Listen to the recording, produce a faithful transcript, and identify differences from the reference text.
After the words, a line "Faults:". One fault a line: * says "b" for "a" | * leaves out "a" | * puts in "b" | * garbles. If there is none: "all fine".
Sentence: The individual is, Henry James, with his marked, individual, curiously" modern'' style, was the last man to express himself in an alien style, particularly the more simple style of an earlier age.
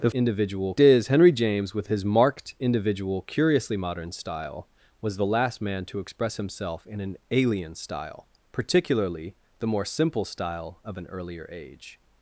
The individual is, Henry James, with his marked, individual, curiously" modern'' style, was the last man to express himself in an alien style, particularly the more simple style of an earlier age.
Faults:
all fine